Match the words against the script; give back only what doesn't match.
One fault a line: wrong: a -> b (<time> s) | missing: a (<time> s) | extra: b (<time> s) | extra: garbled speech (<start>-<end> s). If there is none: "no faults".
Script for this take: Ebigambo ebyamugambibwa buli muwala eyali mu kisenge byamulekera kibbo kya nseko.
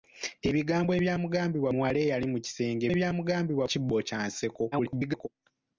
missing: buli (1.7 s)
wrong: byamulekera -> ebyamugambibwa (2.9 s)
extra: garbled speech (4.7-5.3 s)